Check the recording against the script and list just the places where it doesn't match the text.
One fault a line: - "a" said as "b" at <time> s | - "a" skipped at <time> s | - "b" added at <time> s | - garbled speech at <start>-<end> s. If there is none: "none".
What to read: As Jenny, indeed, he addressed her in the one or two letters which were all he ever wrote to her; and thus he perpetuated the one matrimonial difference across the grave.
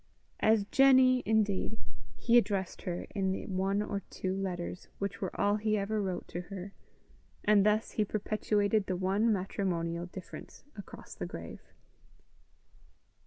none